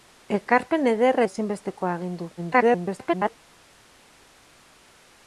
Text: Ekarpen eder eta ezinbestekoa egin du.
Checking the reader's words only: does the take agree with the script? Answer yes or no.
no